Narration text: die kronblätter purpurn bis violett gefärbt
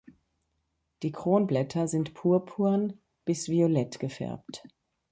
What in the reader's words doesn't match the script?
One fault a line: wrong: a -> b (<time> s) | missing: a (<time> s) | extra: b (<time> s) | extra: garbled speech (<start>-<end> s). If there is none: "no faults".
extra: sind (1.9 s)